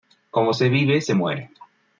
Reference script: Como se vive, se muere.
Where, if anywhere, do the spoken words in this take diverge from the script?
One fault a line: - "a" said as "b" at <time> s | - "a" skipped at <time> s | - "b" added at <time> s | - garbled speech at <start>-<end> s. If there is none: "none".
none